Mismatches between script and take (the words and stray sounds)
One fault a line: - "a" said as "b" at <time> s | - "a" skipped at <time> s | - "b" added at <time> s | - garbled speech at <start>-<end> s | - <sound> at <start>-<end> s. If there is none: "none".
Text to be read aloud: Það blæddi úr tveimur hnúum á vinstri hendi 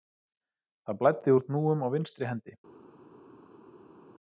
- "tveimur" skipped at 1.4 s